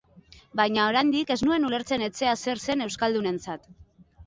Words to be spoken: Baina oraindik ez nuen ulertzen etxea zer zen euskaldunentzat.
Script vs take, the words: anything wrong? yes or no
no